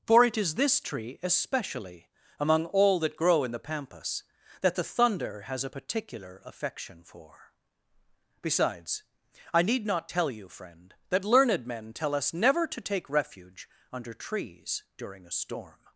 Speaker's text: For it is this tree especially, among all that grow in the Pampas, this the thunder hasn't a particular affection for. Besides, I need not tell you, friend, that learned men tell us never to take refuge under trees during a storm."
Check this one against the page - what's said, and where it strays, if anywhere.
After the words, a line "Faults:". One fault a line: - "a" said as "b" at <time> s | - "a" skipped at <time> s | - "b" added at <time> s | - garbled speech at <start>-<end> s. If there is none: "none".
For it is this tree especially, among all that grow in the Pampas, that the thunder has a particular affection for. Besides, I need not tell you, friend, that learned men tell us never to take refuge under trees during a storm."
Faults:
- "this" said as "that" at 4.6 s
- "hasn't" said as "has" at 5.4 s